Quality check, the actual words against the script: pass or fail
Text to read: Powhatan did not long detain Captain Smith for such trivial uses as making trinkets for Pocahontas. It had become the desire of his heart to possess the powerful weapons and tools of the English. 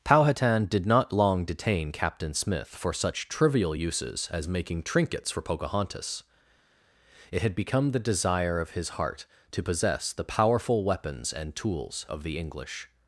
pass